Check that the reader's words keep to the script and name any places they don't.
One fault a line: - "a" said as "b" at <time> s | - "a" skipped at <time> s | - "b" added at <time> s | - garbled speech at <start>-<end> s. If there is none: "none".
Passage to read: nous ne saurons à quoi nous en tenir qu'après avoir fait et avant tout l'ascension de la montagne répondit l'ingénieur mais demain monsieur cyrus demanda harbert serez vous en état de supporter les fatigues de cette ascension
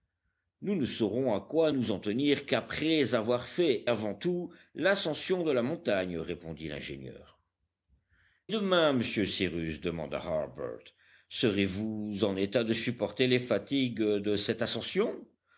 - "et" skipped at 3.9 s
- "mais" skipped at 7.4 s